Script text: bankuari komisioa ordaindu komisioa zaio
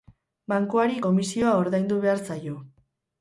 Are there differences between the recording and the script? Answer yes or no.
yes